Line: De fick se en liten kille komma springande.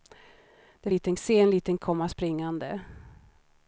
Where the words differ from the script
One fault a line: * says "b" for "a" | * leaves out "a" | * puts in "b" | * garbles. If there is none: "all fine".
* says "liten" for "fick"
* leaves out "kille"